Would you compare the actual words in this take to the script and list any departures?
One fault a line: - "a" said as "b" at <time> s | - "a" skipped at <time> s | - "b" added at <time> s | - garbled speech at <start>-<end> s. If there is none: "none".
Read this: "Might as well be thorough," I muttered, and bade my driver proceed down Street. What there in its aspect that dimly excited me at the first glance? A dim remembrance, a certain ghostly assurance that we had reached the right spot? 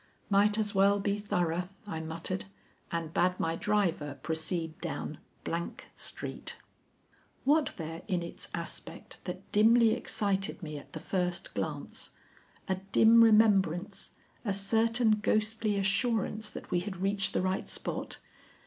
none